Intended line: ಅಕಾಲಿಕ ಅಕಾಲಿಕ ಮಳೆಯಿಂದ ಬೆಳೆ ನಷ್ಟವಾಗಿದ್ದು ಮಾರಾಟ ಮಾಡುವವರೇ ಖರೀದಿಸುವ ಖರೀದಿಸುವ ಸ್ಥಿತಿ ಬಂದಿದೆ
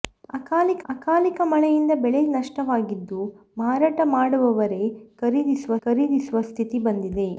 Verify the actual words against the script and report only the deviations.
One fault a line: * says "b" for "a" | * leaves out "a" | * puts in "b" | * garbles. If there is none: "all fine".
all fine